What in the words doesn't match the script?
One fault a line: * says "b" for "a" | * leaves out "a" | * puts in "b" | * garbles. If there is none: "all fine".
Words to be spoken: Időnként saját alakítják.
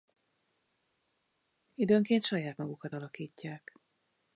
* puts in "magukat"